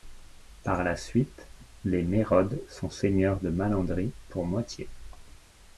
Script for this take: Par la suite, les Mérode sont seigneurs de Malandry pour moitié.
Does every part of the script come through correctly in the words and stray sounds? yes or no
yes